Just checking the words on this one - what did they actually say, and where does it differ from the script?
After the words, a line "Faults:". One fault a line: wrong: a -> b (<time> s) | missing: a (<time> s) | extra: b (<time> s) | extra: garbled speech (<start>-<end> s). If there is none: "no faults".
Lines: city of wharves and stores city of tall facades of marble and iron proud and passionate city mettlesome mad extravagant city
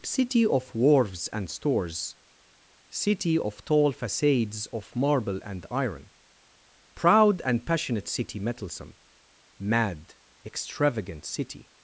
city of wharves and stores city of tall facades of marble and iron proud and passionate city mettlesome mad extravagant city
Faults:
no faults